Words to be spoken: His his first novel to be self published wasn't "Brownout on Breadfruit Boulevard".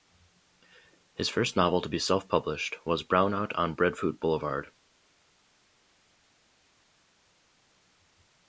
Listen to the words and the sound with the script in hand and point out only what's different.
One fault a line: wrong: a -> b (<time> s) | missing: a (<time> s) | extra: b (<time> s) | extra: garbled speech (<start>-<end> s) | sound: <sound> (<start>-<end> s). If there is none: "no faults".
missing: his (1.3 s)
wrong: wasn't -> was (2.9 s)